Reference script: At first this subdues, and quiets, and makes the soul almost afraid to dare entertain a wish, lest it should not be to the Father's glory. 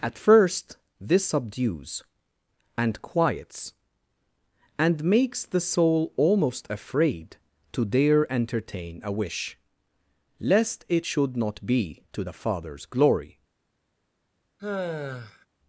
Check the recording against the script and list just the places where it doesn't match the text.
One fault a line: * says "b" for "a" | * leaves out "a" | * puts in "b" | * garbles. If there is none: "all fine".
all fine